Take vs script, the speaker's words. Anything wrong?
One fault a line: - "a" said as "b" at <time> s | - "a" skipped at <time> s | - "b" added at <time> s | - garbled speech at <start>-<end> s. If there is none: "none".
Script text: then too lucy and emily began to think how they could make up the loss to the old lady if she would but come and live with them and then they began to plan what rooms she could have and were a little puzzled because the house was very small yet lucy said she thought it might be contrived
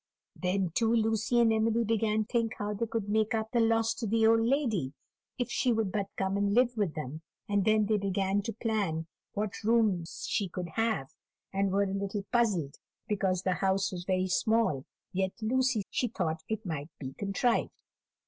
- "to" skipped at 2.2 s
- "said" skipped at 15.8 s